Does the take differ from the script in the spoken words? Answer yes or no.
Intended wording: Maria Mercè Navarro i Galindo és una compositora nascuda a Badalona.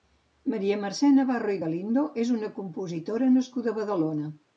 no